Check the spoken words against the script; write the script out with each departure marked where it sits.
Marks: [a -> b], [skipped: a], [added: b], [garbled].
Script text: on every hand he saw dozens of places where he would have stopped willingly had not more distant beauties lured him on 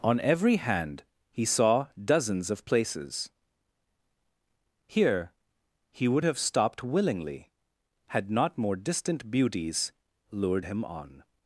on every hand he saw dozens of places [where -> here] he would have stopped willingly had not more distant beauties lured him on